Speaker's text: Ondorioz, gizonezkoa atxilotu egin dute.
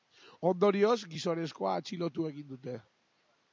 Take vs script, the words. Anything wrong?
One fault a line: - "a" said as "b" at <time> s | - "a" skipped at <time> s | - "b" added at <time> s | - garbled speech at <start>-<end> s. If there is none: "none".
none